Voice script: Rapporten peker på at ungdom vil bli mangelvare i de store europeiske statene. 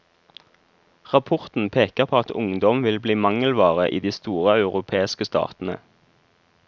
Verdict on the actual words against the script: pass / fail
pass